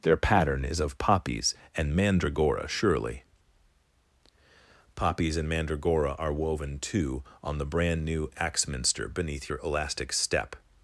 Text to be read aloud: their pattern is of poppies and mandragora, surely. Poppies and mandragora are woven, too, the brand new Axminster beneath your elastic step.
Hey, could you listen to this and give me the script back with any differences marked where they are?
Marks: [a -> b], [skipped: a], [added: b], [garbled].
their pattern is of poppies and mandragora, surely. Poppies and mandragora are woven, too, [added: on] the brand new Axminster beneath your elastic step.